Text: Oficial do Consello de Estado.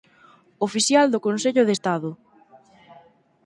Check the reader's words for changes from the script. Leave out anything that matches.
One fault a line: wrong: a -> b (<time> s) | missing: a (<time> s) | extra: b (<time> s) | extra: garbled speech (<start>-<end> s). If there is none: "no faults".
no faults